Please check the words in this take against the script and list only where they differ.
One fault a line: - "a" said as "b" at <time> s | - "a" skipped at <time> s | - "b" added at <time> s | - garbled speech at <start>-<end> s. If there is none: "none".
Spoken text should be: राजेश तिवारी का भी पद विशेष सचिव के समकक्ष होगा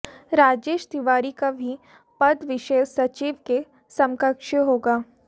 none